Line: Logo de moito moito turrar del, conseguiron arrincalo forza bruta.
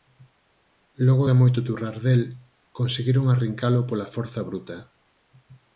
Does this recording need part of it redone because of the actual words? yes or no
yes